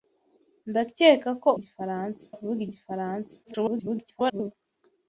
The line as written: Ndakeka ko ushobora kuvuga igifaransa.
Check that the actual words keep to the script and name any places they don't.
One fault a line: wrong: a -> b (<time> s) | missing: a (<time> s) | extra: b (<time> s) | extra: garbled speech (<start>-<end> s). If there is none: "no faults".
wrong: ushobora -> igifaransa (1.6 s)
extra: garbled speech (3.4-4.5 s)